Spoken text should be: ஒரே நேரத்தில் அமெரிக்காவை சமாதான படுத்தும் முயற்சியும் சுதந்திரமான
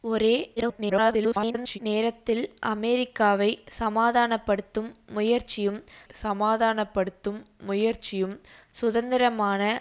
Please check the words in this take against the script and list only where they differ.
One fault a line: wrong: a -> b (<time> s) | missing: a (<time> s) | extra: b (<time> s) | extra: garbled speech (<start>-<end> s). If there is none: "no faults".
extra: garbled speech (0.6-1.8 s)
extra: சமாதான படுத்தும் முயற்சியும் (6.1 s)